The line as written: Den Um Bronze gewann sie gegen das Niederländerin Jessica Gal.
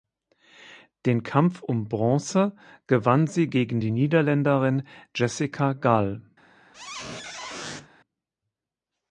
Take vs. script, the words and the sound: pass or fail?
fail